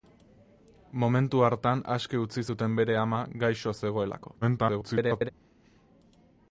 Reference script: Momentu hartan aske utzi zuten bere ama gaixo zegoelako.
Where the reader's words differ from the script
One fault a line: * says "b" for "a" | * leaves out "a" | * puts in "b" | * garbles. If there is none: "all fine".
* garbles